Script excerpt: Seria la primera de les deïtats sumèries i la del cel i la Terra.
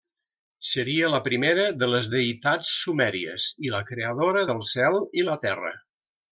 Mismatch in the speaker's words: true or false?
true